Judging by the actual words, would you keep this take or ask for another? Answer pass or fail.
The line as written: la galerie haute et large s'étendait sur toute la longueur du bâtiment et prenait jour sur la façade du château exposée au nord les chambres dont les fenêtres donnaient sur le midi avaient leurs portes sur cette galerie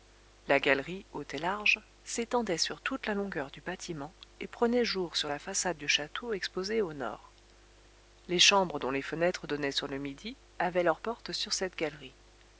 pass